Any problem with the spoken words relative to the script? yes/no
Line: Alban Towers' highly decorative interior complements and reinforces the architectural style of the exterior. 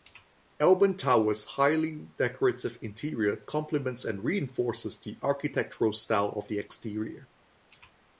no